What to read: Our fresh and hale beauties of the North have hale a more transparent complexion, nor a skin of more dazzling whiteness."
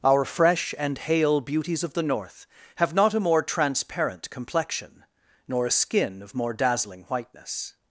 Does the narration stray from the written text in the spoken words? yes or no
yes